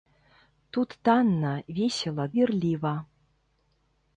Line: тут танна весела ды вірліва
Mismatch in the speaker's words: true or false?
true